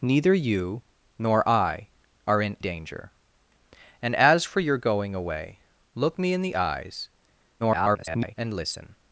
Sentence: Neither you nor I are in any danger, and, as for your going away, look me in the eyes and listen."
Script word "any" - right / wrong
wrong